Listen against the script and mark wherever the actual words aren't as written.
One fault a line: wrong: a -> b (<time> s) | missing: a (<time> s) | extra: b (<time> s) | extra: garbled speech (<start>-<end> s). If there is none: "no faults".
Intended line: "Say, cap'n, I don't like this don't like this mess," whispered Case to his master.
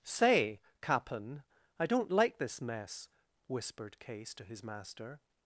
missing: don't like this (2.6 s)